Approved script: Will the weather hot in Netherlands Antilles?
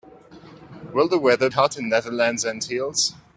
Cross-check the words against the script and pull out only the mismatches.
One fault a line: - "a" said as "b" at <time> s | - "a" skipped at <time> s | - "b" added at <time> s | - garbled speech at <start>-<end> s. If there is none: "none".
none